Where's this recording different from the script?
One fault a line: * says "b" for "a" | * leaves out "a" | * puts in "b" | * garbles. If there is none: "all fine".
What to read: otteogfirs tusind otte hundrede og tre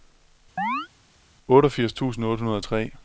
all fine